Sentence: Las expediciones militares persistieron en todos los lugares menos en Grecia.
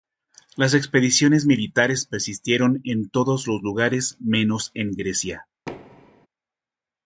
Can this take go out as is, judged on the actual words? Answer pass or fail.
pass